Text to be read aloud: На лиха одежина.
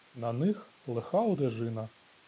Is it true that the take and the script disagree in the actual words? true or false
true